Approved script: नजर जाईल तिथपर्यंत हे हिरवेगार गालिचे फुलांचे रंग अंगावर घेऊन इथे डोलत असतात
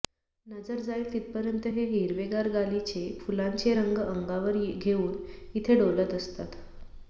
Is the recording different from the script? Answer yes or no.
no